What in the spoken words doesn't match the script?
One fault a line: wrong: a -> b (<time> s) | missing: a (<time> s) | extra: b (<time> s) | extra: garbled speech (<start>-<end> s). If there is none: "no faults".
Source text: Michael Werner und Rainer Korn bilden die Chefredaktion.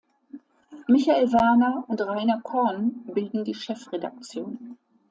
no faults